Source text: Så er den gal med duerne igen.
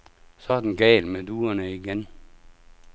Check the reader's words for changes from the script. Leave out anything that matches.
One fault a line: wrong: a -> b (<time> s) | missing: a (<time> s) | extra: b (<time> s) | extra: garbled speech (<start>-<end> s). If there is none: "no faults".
no faults